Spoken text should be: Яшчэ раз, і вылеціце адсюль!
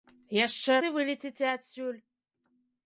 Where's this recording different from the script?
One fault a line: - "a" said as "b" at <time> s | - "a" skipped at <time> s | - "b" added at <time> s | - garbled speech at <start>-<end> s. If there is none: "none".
- "раз" skipped at 0.8 s